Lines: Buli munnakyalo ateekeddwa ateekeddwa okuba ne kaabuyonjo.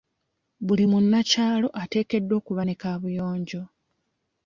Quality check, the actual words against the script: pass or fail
fail